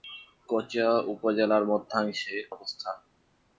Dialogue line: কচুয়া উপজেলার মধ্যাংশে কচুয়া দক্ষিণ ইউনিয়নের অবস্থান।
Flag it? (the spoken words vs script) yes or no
yes